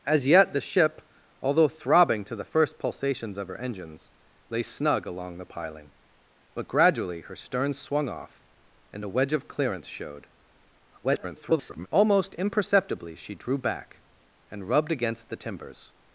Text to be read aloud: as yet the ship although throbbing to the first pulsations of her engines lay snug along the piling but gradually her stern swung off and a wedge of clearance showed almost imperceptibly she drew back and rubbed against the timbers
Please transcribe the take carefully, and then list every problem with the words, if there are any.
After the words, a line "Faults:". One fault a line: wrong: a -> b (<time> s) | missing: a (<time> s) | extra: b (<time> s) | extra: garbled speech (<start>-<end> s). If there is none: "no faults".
as yet the ship although throbbing to the first pulsations of her engines lay snug along the piling but gradually her stern swung off and a wedge of clearance showed [garbled] almost imperceptibly she drew back and rubbed against the timbers
Faults:
extra: garbled speech (11.0-11.9 s)